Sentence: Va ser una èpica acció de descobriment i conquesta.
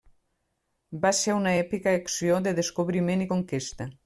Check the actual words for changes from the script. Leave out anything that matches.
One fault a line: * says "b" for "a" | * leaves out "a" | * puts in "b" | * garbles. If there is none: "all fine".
all fine